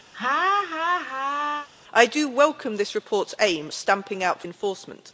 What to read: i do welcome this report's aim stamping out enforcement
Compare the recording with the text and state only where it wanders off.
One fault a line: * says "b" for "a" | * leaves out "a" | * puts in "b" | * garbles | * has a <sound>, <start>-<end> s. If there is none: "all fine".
* has a laugh, 0.1-1.7 s